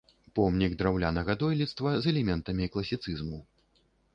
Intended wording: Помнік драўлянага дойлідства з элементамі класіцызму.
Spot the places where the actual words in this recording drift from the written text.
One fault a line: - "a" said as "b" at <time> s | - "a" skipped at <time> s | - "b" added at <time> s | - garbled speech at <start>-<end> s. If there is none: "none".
none